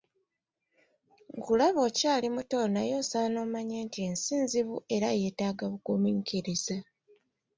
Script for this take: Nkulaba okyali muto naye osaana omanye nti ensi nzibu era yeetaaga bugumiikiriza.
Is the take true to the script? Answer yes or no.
yes